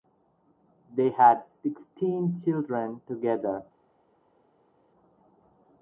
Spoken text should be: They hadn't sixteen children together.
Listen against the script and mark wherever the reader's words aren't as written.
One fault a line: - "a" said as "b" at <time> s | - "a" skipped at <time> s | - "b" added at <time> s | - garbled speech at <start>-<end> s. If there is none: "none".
- "hadn't" said as "had" at 1.1 s